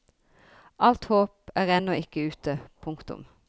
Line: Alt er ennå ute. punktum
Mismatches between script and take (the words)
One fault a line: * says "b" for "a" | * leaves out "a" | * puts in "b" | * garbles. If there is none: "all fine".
* puts in "håp"
* puts in "ikke"